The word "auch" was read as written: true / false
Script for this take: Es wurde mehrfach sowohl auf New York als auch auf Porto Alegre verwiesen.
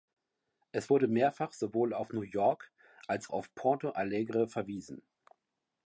false